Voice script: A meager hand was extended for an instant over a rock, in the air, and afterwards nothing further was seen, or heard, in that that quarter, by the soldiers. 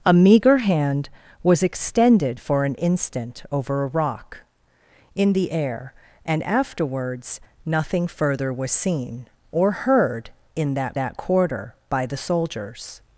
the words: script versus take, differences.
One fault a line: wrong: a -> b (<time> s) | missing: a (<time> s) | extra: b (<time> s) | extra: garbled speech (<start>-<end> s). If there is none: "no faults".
no faults